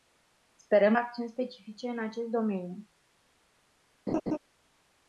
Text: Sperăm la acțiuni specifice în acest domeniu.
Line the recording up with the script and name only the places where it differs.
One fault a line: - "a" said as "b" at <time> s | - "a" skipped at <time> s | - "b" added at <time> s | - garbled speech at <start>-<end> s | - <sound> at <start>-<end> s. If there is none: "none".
- "la" skipped at 0.9 s
- laugh at 4.1-4.4 s